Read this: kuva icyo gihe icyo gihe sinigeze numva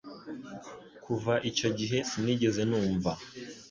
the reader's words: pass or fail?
fail